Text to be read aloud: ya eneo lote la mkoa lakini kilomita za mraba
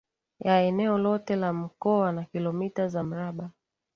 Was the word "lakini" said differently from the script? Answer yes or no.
yes